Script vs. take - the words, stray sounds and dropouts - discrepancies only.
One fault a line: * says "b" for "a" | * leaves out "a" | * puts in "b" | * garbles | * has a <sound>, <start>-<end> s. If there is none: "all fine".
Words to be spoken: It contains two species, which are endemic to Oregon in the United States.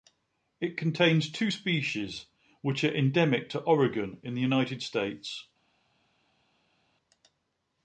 all fine